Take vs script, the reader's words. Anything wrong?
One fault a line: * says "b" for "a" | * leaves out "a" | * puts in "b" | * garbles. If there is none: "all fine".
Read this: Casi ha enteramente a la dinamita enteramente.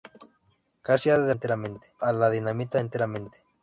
all fine